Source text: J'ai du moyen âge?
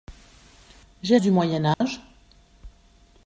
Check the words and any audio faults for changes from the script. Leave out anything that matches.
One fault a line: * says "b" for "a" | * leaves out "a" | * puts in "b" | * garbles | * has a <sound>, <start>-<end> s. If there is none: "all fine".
* has a dropout, 1.7-1.8 s